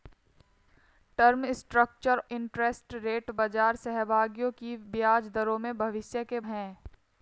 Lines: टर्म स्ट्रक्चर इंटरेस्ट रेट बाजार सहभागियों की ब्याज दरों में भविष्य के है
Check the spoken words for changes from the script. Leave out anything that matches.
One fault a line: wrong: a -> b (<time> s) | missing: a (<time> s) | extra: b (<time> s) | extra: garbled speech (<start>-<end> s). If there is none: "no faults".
no faults